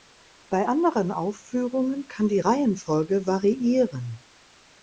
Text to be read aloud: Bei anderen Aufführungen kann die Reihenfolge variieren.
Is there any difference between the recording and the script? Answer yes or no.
no